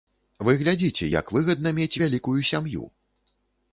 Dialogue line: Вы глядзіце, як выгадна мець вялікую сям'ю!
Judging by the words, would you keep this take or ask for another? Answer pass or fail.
pass